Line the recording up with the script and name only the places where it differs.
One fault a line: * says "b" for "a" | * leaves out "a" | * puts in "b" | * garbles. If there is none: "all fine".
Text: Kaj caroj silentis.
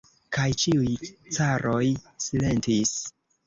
* puts in "ĉiuj"